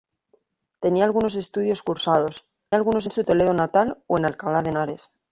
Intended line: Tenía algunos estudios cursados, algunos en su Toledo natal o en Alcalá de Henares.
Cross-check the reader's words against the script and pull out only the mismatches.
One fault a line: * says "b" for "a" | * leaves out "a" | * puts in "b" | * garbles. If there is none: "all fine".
all fine